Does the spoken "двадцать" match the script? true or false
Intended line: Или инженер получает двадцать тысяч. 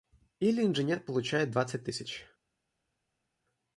true